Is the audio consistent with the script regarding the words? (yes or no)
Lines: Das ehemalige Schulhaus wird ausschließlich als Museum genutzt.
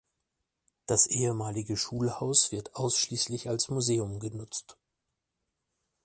yes